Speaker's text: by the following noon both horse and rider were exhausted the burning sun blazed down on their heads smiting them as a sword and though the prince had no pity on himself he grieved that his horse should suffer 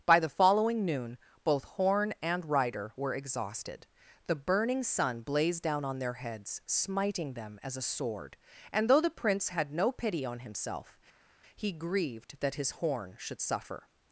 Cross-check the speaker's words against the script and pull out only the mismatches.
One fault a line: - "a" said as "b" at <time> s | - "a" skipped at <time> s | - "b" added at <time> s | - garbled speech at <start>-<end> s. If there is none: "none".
- "horse" said as "horn" at 1.6 s
- "horse" said as "horn" at 12.7 s